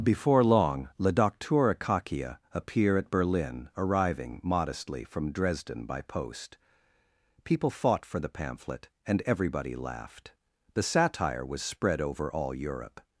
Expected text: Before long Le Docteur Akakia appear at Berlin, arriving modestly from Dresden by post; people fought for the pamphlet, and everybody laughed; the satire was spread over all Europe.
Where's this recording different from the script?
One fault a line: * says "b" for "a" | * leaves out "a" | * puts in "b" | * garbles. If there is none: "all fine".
all fine